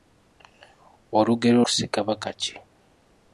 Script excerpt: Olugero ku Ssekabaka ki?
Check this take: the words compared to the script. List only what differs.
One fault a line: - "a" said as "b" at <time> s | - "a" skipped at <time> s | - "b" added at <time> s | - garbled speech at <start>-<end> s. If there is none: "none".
none